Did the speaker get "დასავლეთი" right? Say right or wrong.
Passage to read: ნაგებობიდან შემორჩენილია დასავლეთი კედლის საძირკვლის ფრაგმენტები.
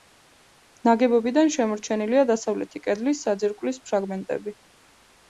right